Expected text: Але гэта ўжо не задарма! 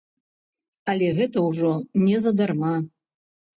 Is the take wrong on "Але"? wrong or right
right